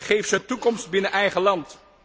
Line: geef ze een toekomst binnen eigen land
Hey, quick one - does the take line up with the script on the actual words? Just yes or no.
yes